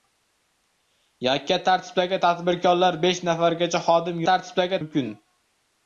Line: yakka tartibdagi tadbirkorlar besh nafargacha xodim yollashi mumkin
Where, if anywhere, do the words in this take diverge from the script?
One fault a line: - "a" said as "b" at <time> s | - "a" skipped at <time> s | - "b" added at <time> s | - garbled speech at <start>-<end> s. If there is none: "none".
- "yollashi" said as "tartibdagi" at 4.3 s